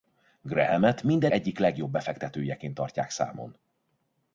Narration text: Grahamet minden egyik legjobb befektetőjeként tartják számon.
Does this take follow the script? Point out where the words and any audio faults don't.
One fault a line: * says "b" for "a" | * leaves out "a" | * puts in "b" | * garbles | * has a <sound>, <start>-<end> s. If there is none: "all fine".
all fine